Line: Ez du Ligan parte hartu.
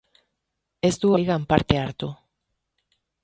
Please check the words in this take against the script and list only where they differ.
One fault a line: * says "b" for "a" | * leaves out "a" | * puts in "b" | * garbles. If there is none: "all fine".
all fine